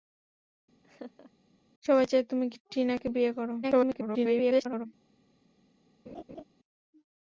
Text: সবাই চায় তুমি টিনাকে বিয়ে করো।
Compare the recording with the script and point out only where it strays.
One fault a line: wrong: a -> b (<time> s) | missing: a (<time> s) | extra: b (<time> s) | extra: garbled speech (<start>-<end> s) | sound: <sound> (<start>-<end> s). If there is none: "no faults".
sound: laugh (0.8-1.3 s)
extra: garbled speech (3.6-4.9 s)
sound: laugh (6.1-6.4 s)